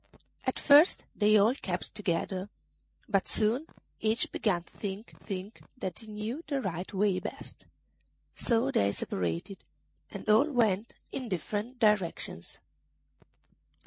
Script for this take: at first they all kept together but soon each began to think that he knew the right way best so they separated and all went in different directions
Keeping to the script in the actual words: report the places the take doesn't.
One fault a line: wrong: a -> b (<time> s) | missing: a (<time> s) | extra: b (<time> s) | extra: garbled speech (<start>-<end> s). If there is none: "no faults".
extra: think (5.2 s)